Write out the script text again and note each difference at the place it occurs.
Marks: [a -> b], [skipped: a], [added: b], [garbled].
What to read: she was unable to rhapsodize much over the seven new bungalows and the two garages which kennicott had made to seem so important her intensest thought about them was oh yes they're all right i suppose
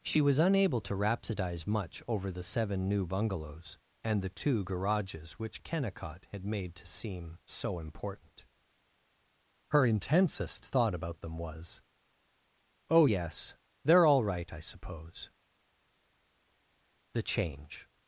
she was unable to rhapsodize much over the seven new bungalows and the two garages which kennicott had made to seem so important her intensest thought about them was oh yes they're all right i suppose [added: the change]